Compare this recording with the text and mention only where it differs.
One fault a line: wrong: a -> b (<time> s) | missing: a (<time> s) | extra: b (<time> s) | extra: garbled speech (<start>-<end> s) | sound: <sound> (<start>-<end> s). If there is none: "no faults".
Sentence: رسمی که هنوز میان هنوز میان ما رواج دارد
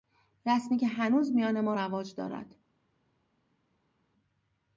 missing: هنوز میان (1.6 s)